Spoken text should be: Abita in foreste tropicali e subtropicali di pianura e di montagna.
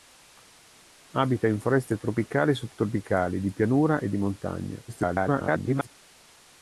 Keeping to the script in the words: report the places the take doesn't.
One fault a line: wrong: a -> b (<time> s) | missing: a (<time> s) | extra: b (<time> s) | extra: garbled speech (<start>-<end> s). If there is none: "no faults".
extra: garbled speech (4.9-5.9 s)